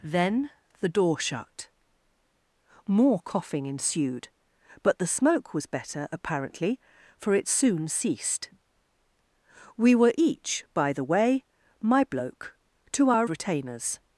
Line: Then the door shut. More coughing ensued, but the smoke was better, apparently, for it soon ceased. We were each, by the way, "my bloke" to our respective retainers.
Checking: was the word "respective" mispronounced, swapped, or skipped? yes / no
yes